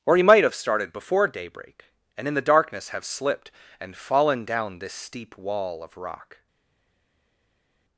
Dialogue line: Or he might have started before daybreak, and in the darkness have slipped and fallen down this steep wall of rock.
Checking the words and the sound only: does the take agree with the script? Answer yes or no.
yes